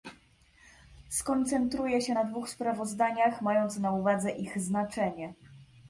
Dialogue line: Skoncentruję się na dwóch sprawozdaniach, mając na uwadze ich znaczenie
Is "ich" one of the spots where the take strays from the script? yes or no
no